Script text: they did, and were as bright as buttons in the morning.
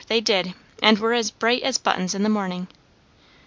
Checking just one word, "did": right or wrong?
right